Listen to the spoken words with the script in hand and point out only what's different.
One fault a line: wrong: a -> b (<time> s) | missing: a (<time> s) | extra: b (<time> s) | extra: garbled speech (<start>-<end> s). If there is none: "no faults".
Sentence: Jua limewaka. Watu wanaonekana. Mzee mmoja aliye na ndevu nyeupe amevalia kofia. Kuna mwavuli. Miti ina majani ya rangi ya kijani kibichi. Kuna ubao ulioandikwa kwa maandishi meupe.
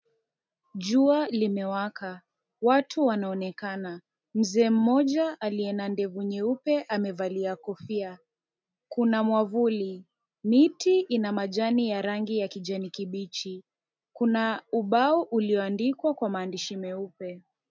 no faults